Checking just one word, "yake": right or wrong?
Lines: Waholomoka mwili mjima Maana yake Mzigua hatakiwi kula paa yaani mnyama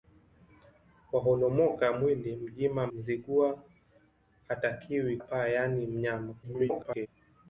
wrong